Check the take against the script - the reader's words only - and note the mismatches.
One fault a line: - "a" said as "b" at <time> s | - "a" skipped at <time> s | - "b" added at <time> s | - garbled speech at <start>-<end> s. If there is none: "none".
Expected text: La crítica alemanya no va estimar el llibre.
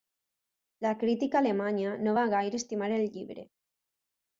- "gaire" added at 2.4 s